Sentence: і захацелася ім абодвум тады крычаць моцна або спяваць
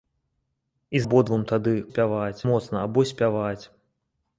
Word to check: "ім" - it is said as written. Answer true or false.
false